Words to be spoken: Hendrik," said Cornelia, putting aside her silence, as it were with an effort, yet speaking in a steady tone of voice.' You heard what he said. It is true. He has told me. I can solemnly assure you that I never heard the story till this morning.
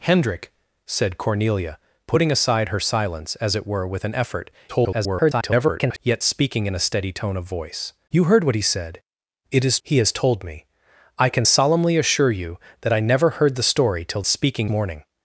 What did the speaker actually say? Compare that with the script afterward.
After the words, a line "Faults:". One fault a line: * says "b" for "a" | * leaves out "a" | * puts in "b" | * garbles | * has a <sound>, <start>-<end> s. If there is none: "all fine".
Hendrik," said Cornelia, putting aside her silence, as it were with an effort, [garbled] yet speaking in a steady tone of voice.' You heard what he said. It is. He has told me. I can solemnly assure you that I never heard the story till speaking morning.
Faults:
* garbles
* leaves out "true"
* says "speaking" for "this"